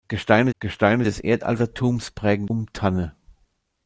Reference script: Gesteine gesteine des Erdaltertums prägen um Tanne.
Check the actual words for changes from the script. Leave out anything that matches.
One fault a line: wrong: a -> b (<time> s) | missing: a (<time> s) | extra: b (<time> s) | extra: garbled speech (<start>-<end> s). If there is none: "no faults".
no faults